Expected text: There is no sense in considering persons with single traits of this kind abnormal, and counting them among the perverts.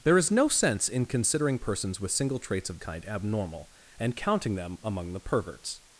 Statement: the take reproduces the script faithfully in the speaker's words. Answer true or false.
false